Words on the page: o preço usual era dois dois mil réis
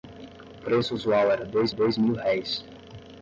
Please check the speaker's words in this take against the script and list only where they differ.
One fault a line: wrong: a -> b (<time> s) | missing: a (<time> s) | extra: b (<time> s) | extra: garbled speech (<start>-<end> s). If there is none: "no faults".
no faults